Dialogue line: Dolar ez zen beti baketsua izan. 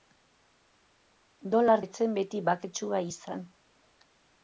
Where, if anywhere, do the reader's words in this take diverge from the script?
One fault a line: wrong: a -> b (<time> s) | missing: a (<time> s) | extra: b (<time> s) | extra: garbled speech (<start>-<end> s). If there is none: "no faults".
no faults